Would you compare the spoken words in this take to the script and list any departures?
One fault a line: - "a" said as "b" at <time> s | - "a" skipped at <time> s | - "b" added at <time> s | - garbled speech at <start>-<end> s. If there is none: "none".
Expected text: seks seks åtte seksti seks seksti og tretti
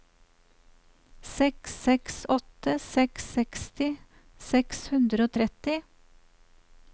- "seks" added at 2.9 s
- "seksti" said as "hundre" at 4.9 s